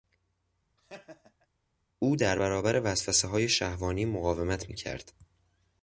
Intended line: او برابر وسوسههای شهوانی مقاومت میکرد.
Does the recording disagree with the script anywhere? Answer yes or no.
yes